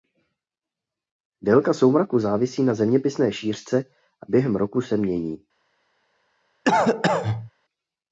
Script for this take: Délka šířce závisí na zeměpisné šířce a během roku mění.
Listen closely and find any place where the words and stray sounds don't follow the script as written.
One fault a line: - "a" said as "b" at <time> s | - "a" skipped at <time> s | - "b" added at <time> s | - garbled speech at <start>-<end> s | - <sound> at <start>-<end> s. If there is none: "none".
- "šířce" said as "soumraku" at 1.7 s
- "se" added at 4.8 s
- cough at 6.7-7.5 s